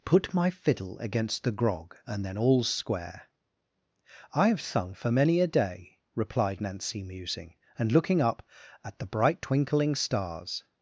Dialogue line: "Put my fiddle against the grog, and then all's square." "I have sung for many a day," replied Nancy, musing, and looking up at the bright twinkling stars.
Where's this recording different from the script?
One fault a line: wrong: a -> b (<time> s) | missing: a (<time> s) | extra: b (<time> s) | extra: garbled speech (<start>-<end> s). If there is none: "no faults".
no faults